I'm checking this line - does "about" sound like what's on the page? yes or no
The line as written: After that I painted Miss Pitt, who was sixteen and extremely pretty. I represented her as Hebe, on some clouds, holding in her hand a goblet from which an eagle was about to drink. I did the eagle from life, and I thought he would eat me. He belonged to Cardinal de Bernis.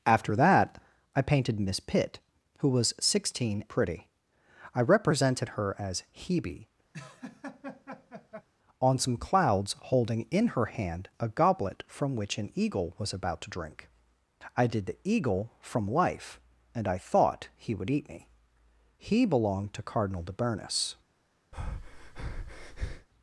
yes